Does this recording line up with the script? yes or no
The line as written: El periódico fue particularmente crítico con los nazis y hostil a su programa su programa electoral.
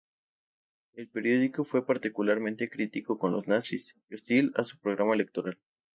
no